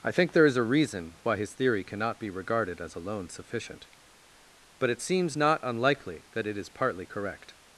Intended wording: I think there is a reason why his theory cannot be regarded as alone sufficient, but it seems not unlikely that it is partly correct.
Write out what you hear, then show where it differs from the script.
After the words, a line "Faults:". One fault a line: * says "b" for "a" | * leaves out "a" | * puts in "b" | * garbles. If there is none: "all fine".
I think there is a reason why his theory cannot be regarded as alone sufficient, but it seems not unlikely that it is partly correct.
Faults:
all fine